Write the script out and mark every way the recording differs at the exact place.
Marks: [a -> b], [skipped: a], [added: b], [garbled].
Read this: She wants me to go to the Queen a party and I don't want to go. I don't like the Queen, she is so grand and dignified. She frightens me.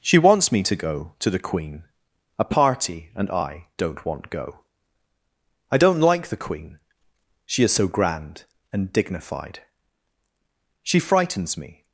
She wants me to go to the Queen a party and I don't want [skipped: to] go. I don't like the Queen, she is so grand and dignified. She frightens me.